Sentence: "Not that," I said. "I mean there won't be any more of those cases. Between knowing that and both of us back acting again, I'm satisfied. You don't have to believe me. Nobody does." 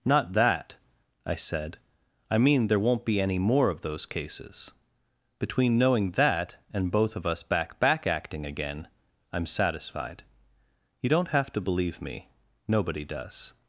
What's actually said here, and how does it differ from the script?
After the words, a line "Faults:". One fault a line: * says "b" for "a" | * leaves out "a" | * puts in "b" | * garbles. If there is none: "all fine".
"Not that," I said. "I mean there won't be any more of those cases. Between knowing that and both of us back back acting again, I'm satisfied. You don't have to believe me. Nobody does."
Faults:
* puts in "back"